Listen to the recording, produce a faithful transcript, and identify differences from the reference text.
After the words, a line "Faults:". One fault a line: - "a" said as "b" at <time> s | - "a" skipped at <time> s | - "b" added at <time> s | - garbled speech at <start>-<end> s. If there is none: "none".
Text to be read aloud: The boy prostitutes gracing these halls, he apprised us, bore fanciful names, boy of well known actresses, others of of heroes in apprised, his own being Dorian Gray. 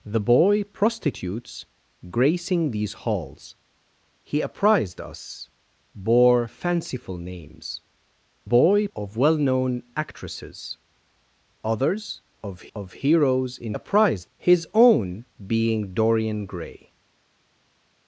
The boy prostitutes gracing these halls, he apprised us, bore fanciful names, boy of well known actresses, others of of heroes in apprised, his own being Dorian Gray.
Faults:
none